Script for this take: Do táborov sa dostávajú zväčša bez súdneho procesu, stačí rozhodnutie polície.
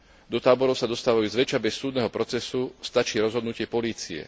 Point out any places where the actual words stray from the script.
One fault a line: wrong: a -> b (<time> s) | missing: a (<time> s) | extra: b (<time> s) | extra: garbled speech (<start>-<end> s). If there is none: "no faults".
no faults